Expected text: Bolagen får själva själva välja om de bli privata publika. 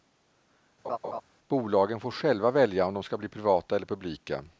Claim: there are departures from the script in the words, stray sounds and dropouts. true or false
true